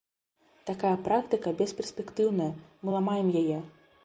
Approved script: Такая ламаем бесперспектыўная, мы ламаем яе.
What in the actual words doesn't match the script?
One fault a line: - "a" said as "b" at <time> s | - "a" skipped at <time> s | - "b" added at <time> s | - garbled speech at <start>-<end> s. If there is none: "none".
- "ламаем" said as "практыка" at 1.1 s